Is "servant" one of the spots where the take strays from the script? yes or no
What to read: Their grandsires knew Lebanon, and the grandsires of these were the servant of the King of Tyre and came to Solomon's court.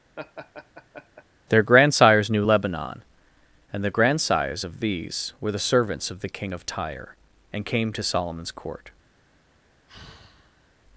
yes